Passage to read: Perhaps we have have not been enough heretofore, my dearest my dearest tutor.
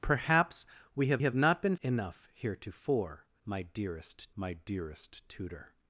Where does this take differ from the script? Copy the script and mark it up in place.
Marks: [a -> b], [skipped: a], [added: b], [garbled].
Perhaps we have have not been enough heretofore, my dearest my dearest tutor.